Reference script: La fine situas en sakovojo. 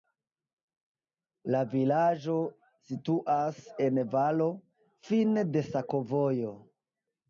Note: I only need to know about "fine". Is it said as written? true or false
false